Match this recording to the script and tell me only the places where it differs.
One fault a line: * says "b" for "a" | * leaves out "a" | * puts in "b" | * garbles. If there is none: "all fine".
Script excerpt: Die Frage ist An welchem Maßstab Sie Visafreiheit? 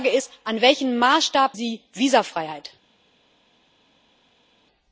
all fine